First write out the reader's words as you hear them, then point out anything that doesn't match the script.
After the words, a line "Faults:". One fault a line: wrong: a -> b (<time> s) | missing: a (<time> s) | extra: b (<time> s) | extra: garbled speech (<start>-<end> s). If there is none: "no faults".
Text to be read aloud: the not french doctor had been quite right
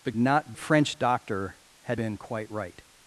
the not french doctor had been quite right
Faults:
no faults